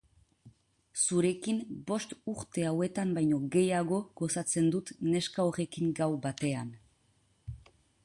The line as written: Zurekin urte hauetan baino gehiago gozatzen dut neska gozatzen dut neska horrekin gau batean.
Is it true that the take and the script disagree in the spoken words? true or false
true